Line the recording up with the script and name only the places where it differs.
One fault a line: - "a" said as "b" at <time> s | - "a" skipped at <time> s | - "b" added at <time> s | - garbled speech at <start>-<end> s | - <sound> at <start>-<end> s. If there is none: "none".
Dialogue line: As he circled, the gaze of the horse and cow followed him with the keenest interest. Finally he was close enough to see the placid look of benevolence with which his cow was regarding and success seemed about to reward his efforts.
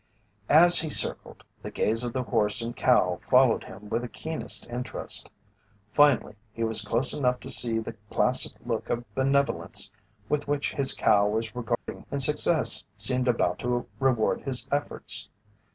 - dropout at 11.7-11.9 s